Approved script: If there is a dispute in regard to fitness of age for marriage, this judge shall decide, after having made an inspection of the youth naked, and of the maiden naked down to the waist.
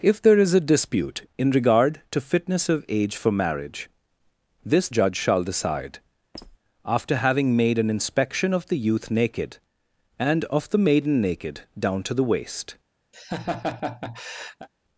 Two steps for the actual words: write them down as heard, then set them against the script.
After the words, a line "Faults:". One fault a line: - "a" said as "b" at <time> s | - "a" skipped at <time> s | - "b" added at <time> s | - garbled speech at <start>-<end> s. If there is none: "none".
If there is a dispute in regard to fitness of age for marriage, this judge shall decide, after having made an inspection of the youth naked, and of the maiden naked down to the waist.
Faults:
none